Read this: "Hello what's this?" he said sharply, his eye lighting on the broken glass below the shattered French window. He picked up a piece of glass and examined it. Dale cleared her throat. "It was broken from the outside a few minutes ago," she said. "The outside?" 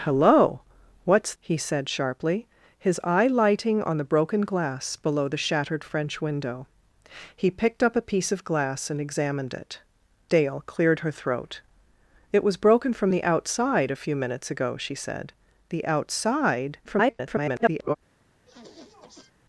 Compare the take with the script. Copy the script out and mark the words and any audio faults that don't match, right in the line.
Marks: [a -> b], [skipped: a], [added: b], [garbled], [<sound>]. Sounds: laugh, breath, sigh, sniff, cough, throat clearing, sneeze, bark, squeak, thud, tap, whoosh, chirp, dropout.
"Hello what's [skipped: this?"] he said sharply, his eye lighting on the broken glass below the shattered French window. He picked up a piece of glass and examined it. Dale cleared her throat. "It was broken from the outside a few minutes ago," she said. "The outside?" [garbled] [sniff]